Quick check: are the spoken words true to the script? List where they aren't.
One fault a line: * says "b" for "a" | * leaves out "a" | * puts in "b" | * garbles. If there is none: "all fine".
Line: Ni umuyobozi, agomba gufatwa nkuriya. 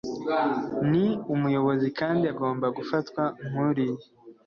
* puts in "kandi"